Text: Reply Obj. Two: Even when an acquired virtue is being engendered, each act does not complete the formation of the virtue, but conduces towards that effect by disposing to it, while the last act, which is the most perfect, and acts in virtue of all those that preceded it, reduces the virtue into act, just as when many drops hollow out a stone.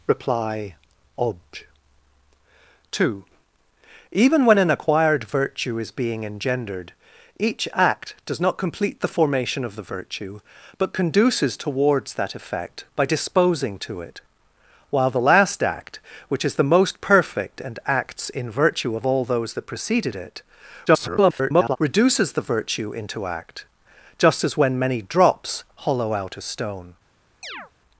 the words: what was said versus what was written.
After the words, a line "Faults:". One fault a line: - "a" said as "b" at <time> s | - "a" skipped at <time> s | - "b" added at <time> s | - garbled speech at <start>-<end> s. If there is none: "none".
Reply Obj. Two: Even when an acquired virtue is being engendered, each act does not complete the formation of the virtue, but conduces towards that effect by disposing to it, while the last act, which is the most perfect, and acts in virtue of all those that preceded it, [garbled] reduces the virtue into act, just as when many drops hollow out a stone.
Faults:
- garbled speech at 20.9-21.8 s